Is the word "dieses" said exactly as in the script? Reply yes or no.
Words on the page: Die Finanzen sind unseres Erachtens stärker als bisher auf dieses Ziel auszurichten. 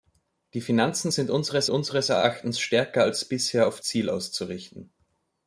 no